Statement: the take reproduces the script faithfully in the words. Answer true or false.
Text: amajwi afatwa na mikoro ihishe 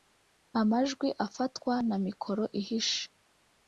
true